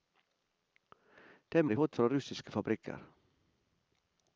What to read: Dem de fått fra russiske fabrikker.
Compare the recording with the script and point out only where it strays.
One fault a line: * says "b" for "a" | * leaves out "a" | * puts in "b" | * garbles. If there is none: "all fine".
all fine